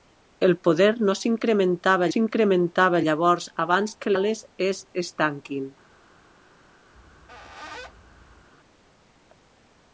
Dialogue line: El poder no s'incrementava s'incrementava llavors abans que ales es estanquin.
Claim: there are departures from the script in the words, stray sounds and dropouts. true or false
true